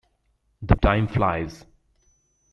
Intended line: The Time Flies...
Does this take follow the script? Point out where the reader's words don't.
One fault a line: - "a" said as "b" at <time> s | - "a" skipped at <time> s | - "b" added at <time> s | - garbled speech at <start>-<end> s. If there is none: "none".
none